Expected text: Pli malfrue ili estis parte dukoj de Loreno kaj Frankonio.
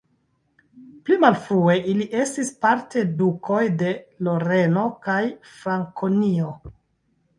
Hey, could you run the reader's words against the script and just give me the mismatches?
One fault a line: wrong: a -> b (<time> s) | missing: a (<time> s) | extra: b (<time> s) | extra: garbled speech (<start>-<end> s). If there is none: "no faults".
no faults